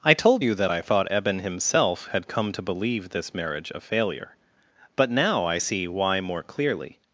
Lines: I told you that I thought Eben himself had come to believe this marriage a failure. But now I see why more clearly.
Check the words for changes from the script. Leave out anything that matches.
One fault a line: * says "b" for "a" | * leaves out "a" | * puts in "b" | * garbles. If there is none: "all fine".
all fine